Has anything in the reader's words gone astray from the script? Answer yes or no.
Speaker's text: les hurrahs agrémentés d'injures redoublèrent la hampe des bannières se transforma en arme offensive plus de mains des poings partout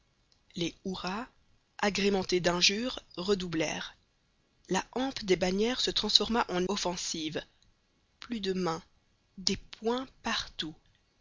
yes